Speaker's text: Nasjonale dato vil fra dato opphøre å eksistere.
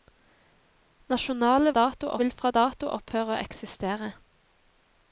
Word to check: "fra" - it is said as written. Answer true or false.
true